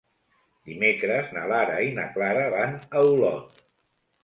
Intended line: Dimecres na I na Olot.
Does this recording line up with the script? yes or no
no